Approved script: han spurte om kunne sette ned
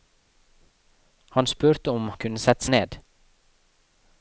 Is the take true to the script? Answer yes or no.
yes